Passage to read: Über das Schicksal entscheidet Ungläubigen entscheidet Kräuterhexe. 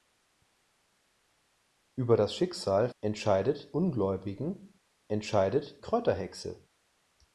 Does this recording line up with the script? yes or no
yes